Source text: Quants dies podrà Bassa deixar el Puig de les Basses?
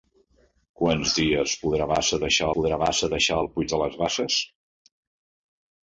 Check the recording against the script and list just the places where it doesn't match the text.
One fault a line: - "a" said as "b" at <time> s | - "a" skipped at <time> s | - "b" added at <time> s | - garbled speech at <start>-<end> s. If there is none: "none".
- "podrà Bassa deixar" added at 2.6 s